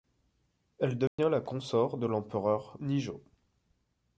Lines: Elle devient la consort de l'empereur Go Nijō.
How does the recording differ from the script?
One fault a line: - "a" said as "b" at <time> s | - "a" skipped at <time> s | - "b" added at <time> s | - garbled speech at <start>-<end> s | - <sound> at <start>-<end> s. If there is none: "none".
- dropout at 1.1-1.2 s
- "Go" skipped at 2.8 s